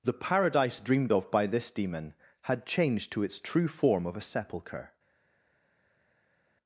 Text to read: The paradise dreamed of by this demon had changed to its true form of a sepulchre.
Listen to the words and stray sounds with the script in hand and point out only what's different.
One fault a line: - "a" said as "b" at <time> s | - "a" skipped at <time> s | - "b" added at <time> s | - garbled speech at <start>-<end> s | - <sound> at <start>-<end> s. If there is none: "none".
none